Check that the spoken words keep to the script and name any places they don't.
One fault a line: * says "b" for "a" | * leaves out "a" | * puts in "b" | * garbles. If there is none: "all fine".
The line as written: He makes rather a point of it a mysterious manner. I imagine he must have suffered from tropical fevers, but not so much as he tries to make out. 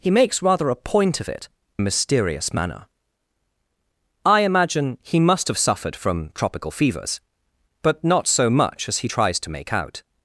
all fine